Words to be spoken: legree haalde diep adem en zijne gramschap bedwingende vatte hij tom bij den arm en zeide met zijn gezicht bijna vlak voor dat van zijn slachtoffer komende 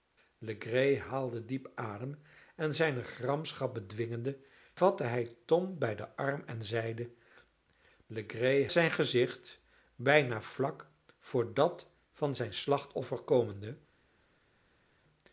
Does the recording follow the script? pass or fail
fail